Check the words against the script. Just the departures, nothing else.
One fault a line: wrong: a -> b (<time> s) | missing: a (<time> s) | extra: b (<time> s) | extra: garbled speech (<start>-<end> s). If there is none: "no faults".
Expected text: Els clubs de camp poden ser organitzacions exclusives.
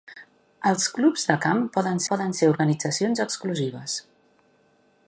extra: poden (2.1 s)